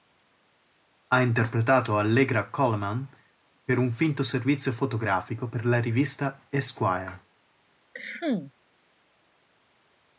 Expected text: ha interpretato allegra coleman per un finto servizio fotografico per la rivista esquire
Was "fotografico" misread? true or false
false